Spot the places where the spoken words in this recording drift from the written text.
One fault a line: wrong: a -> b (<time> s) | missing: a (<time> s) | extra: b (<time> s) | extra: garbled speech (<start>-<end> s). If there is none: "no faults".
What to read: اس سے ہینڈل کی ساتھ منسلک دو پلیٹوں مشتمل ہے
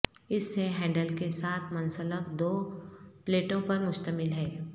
wrong: کی -> کے (1.2 s)
extra: پر (3.6 s)